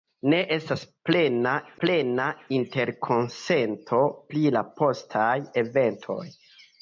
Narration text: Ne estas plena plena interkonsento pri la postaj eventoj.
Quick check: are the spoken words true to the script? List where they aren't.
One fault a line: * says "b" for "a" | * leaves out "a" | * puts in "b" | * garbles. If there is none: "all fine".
all fine